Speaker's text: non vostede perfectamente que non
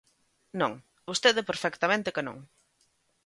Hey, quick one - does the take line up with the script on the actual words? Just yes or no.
yes